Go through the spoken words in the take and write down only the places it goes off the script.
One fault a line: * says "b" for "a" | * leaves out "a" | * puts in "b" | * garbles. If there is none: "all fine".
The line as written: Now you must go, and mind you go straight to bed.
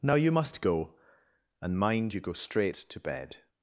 all fine